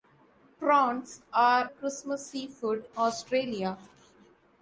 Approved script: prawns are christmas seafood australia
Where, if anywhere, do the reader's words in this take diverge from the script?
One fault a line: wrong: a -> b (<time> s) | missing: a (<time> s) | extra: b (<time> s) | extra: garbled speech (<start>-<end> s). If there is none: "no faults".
no faults